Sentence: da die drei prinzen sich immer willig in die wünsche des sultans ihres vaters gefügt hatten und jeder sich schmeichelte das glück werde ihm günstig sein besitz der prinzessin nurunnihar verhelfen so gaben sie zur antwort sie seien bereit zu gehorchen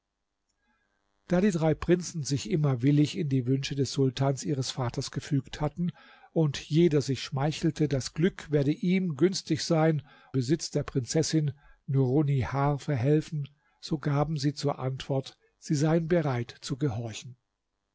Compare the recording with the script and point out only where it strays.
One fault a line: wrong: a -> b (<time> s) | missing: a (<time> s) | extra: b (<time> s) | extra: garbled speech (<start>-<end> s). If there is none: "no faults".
no faults